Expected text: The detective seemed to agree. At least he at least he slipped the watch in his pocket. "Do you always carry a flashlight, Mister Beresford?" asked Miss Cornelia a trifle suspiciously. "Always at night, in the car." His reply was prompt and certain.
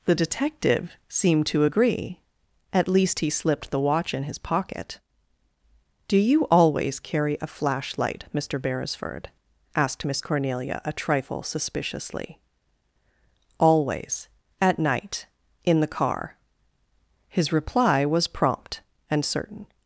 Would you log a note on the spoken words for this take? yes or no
yes